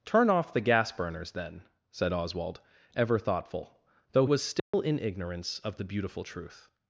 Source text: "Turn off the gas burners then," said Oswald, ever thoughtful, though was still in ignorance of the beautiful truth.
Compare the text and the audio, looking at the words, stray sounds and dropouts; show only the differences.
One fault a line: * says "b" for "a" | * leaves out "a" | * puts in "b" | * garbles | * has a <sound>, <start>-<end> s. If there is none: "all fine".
* has a dropout, 4.6-4.7 s